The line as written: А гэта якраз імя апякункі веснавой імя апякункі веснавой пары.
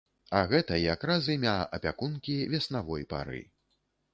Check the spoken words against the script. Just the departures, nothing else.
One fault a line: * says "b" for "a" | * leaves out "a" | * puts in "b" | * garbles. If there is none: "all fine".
* leaves out "імя апякункі веснавой"